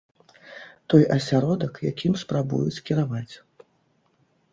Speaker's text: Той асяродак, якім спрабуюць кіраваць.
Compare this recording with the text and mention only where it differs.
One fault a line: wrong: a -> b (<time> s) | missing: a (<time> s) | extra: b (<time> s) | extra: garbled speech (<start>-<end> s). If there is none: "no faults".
no faults